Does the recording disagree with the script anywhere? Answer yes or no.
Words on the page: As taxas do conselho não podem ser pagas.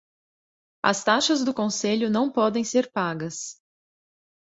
no